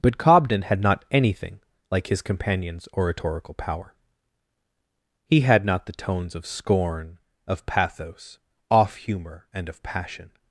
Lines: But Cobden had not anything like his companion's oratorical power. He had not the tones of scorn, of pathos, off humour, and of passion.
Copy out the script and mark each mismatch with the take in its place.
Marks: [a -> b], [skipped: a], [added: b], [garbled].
But Cobden had not anything like his companion's oratorical power. He had not the tones of scorn, of pathos, off humour, and of passion.